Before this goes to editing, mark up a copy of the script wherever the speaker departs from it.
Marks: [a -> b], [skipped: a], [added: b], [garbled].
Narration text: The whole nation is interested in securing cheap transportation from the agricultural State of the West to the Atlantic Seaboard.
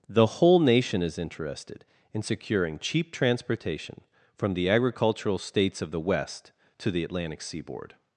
The whole nation is interested in securing cheap transportation from the agricultural [State -> States] of the West to the Atlantic Seaboard.